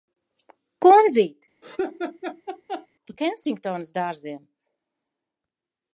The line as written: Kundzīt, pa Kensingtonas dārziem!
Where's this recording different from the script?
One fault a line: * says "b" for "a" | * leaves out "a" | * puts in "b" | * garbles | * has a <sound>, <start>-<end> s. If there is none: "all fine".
* has a laugh, 1.6-2.9 s